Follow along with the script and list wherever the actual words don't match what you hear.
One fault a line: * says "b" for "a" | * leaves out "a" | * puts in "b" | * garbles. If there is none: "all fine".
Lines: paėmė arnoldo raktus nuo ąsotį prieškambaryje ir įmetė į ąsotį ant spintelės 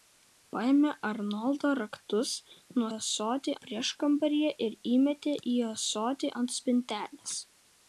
all fine